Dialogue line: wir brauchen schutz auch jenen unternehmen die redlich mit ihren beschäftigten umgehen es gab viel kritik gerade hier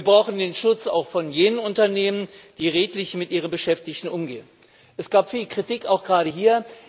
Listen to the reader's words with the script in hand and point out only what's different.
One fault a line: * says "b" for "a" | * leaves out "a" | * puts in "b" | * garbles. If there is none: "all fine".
* puts in "den"
* puts in "von"
* puts in "auch"